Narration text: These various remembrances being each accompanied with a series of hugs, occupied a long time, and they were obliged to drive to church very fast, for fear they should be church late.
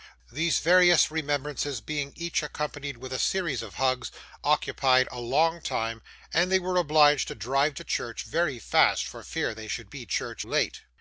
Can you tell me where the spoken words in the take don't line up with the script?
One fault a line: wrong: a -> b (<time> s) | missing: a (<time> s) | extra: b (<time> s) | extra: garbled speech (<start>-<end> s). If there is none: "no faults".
no faults